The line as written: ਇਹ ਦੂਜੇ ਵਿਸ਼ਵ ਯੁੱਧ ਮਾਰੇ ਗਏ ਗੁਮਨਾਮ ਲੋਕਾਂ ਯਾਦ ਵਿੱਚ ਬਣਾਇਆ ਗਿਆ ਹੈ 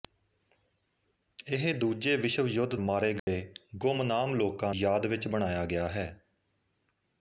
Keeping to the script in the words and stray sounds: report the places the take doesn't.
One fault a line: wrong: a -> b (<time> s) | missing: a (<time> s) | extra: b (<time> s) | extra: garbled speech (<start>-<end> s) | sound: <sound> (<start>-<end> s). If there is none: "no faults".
sound: dropout (3.2-3.3 s)